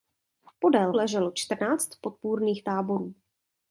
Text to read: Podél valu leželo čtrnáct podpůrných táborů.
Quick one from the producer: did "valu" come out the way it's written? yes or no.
no